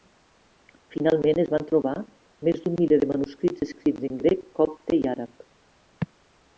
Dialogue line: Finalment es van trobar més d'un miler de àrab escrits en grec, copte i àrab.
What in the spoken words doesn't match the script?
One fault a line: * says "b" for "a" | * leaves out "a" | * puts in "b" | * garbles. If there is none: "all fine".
* says "manuscrits" for "àrab"